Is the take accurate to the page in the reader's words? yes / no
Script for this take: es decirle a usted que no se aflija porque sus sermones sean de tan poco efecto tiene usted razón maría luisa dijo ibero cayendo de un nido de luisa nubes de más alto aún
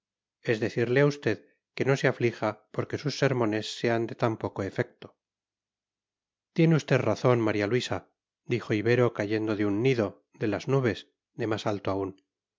no